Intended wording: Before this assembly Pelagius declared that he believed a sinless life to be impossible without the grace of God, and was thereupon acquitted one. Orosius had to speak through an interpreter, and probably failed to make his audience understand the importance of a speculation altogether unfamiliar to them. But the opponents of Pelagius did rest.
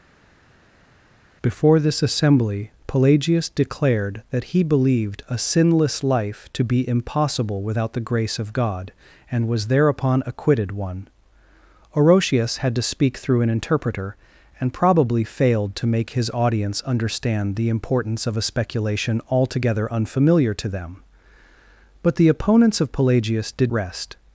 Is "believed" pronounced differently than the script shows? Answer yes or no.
no